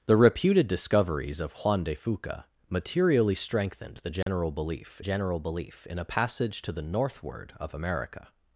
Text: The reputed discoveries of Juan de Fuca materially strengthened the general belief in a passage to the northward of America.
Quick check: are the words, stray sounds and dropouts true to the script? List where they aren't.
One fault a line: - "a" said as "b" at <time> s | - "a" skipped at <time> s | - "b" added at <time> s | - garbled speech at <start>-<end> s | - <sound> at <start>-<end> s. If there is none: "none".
- dropout at 4.2-4.3 s
- "general belief" added at 5.0 s